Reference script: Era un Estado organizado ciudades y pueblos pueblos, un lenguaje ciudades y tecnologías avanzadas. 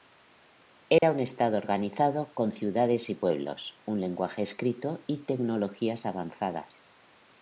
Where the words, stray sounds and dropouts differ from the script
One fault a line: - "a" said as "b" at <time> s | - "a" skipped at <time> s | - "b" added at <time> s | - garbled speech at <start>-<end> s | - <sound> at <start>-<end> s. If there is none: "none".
- dropout at 1.0-1.0 s
- "con" added at 2.3 s
- "pueblos" skipped at 3.8 s
- "ciudades" said as "escrito" at 4.4 s